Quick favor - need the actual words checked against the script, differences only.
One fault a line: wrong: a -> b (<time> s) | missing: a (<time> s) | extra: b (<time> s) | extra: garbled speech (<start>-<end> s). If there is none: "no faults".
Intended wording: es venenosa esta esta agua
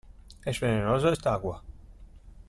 missing: esta (1.3 s)